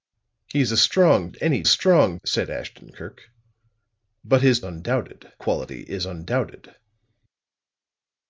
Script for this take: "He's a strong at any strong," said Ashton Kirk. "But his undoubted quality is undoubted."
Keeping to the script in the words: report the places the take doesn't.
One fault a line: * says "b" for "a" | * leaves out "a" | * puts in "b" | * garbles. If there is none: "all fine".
all fine